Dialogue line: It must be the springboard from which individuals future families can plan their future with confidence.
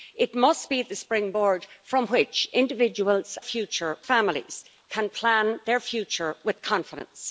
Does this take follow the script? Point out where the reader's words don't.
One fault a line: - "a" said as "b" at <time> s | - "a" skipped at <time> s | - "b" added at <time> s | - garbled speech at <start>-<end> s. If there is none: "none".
none